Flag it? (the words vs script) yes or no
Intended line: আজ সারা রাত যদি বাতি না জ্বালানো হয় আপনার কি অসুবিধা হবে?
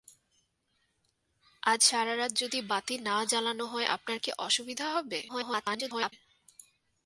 yes